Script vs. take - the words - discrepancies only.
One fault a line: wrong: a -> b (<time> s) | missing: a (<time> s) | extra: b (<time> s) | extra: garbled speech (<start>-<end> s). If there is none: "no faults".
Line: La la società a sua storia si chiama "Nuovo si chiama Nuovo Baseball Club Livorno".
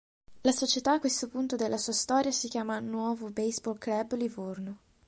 missing: la (0.5 s)
wrong: sua storia si chiama Nuovo -> questo punto della sua storia (1.0 s)